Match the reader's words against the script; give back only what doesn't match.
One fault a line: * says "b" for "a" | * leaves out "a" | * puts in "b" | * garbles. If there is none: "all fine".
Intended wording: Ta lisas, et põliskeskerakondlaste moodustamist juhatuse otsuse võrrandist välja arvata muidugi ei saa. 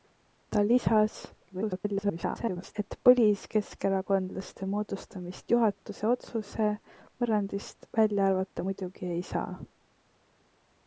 * garbles